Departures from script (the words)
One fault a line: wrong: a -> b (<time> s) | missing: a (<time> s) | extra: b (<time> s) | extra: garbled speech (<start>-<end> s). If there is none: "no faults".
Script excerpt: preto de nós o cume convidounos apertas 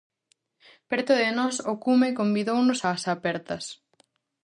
extra: ás (2.9 s)